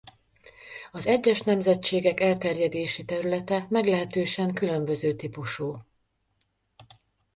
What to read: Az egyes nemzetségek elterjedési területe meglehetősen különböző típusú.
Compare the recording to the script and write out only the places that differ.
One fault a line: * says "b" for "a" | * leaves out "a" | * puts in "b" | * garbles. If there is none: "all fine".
all fine